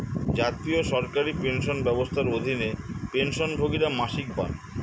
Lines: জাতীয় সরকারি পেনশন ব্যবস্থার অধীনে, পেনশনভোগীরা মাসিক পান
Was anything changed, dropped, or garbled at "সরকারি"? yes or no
no